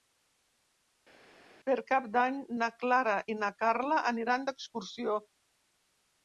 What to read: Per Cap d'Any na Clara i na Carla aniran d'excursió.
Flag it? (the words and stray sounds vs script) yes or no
no